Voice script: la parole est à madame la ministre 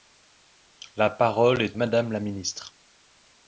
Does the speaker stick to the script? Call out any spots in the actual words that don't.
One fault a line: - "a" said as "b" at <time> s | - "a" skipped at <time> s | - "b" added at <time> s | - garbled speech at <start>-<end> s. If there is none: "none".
- "à" skipped at 1.8 s